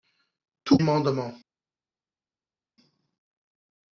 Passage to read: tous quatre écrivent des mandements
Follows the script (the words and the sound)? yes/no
no